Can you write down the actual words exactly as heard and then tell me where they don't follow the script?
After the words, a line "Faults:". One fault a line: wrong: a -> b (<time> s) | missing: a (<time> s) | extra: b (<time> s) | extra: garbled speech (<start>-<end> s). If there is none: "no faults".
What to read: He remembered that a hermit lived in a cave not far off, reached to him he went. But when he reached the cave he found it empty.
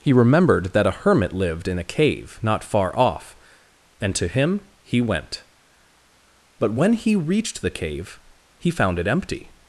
He remembered that a hermit lived in a cave not far off, and to him he went. But when he reached the cave he found it empty.
Faults:
wrong: reached -> and (4.0 s)